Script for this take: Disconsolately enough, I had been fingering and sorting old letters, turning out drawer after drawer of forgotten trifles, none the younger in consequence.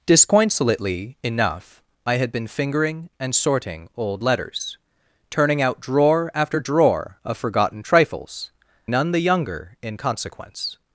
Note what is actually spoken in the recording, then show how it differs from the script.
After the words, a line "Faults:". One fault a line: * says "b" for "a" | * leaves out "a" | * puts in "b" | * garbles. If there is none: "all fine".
Disconsolately enough, I had been fingering and sorting old letters, turning out drawer after drawer of forgotten trifles, none the younger in consequence.
Faults:
all fine